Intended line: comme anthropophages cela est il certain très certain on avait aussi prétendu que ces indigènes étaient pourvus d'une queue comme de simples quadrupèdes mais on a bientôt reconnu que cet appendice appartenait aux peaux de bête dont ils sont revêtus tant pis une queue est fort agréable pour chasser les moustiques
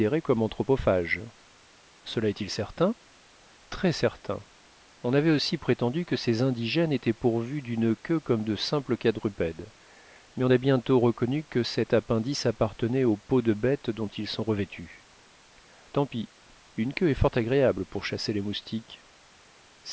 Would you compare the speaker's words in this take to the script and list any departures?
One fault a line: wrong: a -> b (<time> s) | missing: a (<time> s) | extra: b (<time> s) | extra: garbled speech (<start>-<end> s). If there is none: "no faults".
no faults